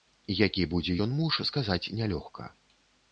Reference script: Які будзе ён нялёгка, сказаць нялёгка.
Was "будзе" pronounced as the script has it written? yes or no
yes